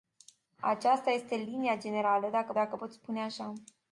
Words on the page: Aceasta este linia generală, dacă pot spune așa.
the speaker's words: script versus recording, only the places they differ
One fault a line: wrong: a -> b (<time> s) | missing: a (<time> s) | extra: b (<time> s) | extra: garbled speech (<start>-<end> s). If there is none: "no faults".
extra: dacă (2.5 s)